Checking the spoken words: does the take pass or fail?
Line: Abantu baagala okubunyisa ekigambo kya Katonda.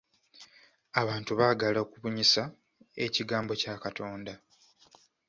pass